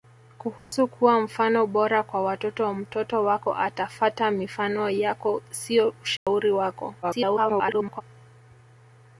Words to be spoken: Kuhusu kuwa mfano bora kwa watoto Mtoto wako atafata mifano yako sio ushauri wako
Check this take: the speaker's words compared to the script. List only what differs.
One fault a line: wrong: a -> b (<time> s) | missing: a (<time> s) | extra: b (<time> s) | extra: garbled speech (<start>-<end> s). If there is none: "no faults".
extra: garbled speech (7.0-8.0 s)